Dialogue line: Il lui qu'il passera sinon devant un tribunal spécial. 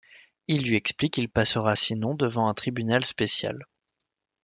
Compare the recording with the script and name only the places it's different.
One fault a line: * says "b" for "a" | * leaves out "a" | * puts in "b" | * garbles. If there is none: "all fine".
* puts in "explique"